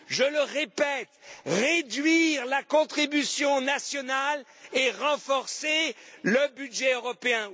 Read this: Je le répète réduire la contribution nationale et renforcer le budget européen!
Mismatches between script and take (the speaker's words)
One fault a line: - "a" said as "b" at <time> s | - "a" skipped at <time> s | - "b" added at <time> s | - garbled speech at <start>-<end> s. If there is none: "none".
none